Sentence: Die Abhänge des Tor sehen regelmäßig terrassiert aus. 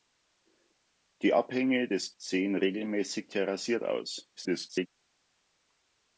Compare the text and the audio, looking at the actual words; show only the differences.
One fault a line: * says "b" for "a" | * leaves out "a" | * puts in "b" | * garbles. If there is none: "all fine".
* leaves out "Tor"
* garbles